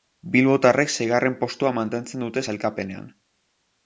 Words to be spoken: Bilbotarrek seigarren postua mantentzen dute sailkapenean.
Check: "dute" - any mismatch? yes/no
no